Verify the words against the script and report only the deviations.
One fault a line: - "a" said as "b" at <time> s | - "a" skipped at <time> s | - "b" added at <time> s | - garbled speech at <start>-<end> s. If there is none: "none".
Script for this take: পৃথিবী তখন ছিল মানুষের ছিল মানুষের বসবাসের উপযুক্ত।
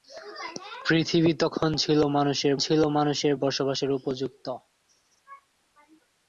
none